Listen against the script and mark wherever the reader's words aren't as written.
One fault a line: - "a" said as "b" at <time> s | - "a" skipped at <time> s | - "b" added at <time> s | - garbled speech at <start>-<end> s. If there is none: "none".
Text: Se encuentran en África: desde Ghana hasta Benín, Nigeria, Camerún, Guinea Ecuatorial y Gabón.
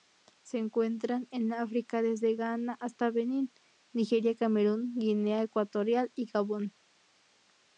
none